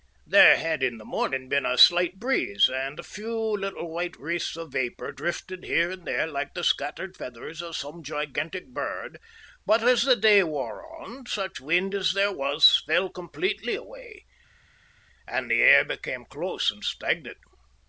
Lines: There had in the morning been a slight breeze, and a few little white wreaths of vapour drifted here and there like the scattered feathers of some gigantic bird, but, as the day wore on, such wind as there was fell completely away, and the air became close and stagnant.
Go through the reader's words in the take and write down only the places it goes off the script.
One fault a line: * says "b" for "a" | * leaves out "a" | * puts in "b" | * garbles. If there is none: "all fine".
all fine